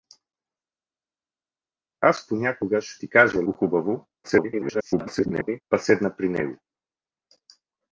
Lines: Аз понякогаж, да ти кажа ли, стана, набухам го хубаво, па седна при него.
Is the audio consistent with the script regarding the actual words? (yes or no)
no